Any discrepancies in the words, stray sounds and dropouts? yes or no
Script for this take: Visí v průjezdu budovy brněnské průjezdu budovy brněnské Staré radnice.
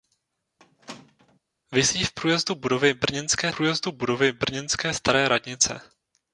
yes